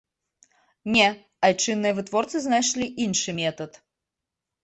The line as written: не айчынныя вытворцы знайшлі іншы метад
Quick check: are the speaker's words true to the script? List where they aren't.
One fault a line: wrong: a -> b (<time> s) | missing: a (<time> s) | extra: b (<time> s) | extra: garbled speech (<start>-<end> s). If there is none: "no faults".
no faults